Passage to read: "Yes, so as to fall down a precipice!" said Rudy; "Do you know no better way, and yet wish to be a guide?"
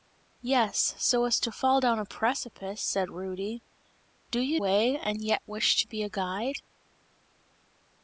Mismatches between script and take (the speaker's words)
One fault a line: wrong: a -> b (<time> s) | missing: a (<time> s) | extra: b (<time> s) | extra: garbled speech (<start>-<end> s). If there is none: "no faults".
missing: know no better (4.6 s)